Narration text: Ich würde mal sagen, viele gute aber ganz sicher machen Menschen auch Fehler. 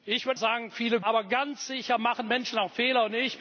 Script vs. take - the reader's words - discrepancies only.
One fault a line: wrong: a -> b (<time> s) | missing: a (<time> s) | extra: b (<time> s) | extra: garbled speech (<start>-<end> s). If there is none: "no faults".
missing: mal (0.4 s)
missing: gute (1.0 s)